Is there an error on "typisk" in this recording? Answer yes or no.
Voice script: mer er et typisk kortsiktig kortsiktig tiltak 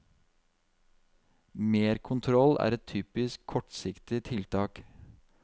no